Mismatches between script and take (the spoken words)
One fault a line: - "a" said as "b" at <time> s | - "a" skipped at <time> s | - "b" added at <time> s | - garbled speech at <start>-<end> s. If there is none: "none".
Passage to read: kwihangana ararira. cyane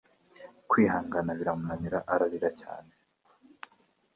- "biramunanira" added at 1.4 s